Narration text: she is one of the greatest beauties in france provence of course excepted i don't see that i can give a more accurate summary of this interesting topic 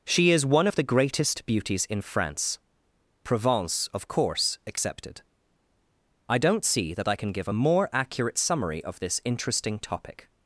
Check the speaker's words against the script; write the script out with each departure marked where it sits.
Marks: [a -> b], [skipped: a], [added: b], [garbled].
she is one of the greatest beauties in france provence of course excepted i don't see that i can give a more accurate summary of this interesting topic